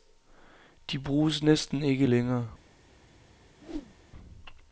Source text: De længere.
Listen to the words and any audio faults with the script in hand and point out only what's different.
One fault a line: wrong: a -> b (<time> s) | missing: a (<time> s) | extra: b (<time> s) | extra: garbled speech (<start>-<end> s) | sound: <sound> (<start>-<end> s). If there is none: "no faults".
extra: bruges næsten ikke (1.0 s)
sound: whoosh (3.6-4.0 s)